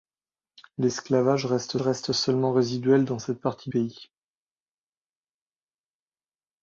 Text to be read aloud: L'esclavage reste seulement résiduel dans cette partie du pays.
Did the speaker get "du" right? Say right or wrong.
wrong